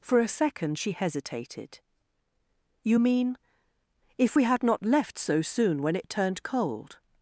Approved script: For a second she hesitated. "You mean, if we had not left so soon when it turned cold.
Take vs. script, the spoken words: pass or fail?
pass